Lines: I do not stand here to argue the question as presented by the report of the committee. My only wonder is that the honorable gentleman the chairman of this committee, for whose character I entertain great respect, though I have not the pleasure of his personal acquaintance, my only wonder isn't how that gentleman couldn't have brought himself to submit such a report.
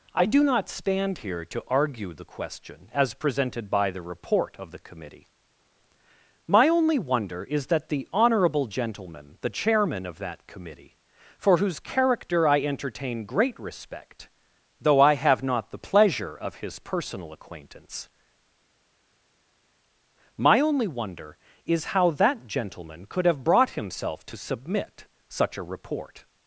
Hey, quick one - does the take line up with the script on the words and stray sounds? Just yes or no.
no